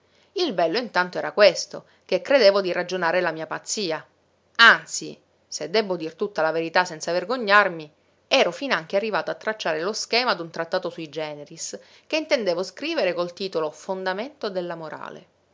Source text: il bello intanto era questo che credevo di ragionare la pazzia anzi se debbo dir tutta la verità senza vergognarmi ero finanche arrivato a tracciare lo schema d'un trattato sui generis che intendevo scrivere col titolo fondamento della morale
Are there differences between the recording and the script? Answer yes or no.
yes